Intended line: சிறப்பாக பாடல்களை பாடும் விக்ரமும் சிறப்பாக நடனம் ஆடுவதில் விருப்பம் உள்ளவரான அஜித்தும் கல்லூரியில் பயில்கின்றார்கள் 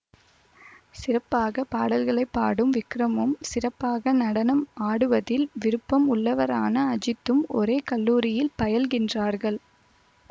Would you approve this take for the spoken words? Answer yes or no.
no